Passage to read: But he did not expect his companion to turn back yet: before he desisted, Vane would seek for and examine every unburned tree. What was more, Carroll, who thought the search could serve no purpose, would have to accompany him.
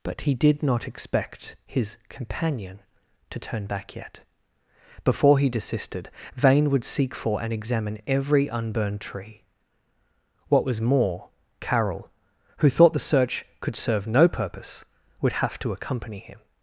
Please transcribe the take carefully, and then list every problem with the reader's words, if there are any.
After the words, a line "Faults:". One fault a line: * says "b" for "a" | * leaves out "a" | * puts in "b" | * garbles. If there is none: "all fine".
But he did not expect his companion to turn back yet: before he desisted, Vane would seek for and examine every unburned tree. What was more, Carroll, who thought the search could serve no purpose, would have to accompany him.
Faults:
all fine